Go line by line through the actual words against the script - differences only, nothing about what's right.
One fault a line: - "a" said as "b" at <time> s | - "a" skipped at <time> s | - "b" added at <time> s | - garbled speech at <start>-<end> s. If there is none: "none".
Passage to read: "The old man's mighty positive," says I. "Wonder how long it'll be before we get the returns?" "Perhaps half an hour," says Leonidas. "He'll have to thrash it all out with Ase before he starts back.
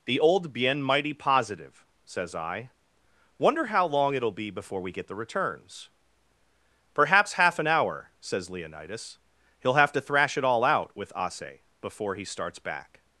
- "man's" said as "bien" at 0.5 s